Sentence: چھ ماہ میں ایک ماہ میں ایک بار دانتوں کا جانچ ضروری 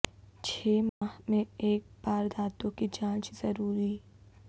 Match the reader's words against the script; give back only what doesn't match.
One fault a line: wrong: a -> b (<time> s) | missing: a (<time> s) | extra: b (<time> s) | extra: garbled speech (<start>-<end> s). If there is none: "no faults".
missing: ماہ میں ایک (1.8 s)
wrong: کا -> کی (2.8 s)